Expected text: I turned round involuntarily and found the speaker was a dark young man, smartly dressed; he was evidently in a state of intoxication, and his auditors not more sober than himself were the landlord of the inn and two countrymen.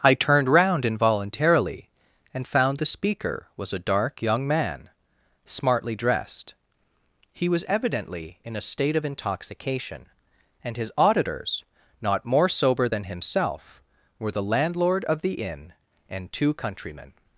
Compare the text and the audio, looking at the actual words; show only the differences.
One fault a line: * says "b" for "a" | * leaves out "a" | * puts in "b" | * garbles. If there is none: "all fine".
all fine